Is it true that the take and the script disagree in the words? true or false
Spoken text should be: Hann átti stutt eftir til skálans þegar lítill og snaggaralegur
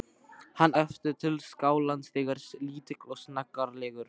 true